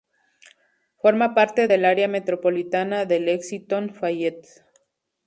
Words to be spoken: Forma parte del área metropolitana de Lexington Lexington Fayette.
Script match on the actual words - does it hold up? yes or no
no